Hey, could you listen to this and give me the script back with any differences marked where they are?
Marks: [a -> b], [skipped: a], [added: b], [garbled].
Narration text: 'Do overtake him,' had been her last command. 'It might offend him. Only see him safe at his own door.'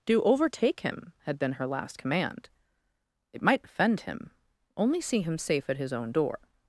'Do overtake him,' had been her last command. 'It might offend him. Only see him safe at his own door.'